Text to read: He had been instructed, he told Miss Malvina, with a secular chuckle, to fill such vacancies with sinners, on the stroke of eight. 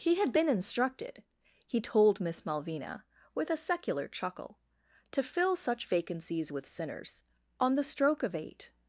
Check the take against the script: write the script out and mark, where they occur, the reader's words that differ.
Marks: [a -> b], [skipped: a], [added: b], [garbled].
He had been instructed, he told Miss Malvina, with a secular chuckle, to fill such vacancies with sinners, on the stroke of eight.